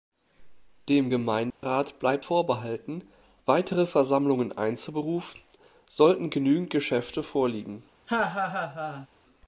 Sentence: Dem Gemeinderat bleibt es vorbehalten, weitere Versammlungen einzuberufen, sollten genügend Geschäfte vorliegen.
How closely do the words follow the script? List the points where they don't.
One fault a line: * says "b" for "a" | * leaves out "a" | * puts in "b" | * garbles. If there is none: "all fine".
* leaves out "es"